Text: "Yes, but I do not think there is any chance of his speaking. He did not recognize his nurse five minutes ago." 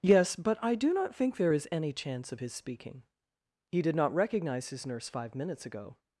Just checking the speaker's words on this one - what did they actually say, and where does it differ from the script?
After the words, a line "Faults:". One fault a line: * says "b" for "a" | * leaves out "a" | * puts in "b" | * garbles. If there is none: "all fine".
"Yes, but I do not think there is any chance of his speaking. He did not recognize his nurse five minutes ago."
Faults:
all fine